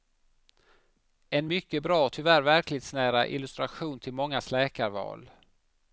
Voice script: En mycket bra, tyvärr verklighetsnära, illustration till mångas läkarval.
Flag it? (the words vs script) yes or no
no